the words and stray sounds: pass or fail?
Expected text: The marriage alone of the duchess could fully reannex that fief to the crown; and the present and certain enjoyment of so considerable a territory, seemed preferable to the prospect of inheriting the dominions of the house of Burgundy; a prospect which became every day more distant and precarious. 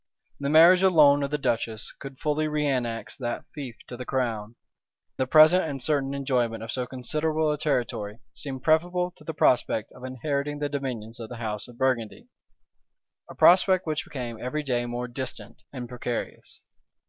fail